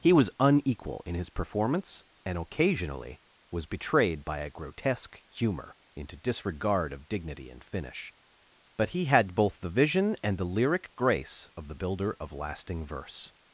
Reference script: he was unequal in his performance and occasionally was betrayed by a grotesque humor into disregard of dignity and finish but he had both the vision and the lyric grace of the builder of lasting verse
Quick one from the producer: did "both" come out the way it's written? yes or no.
yes